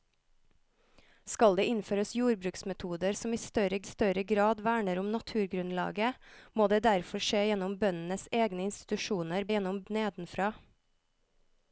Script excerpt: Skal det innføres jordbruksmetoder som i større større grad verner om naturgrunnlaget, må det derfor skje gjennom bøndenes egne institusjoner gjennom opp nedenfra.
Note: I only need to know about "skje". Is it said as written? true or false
true